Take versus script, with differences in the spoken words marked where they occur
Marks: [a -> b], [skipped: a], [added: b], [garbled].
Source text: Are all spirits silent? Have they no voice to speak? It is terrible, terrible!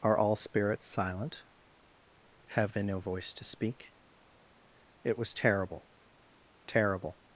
Are all spirits silent? Have they no voice to speak? It [is -> was] terrible, terrible!